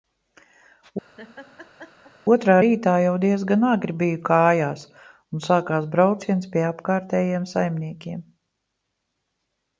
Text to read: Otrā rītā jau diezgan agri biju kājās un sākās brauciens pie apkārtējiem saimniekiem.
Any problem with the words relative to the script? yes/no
no